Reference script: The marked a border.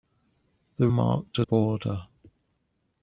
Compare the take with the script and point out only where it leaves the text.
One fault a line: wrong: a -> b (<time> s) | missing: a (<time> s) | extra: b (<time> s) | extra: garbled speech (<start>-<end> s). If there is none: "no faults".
no faults